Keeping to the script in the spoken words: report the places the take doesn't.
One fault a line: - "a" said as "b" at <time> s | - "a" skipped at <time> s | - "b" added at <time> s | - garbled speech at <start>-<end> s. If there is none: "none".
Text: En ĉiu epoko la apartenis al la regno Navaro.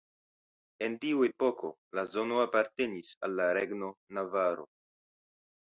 - "ĉiu" said as "tiu" at 1.0 s
- "zono" added at 2.1 s